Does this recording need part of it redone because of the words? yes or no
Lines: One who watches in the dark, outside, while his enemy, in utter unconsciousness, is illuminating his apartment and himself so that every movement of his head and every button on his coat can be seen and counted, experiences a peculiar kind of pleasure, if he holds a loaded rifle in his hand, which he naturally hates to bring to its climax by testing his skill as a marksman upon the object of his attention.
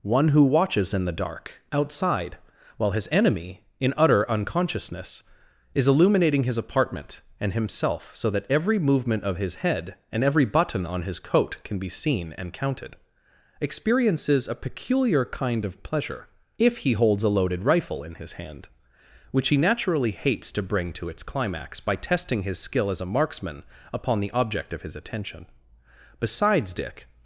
yes